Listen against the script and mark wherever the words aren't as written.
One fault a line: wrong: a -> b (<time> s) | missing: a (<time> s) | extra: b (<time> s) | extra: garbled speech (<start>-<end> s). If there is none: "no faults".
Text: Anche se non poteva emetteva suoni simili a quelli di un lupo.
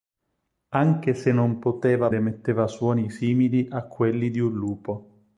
no faults